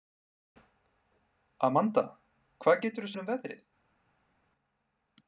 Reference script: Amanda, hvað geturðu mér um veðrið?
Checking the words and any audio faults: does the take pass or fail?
pass